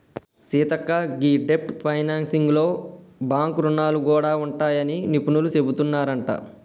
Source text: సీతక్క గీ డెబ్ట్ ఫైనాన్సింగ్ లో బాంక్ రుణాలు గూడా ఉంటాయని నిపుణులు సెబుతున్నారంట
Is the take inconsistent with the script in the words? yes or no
no